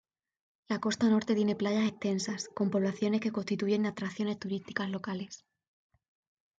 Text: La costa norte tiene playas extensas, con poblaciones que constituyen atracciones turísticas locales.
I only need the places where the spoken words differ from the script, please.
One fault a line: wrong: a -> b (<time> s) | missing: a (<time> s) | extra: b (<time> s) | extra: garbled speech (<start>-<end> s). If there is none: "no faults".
no faults